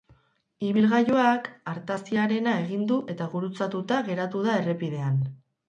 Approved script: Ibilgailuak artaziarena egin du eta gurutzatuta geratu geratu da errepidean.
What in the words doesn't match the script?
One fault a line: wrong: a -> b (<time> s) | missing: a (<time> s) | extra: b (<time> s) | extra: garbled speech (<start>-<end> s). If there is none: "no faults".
missing: geratu (4.5 s)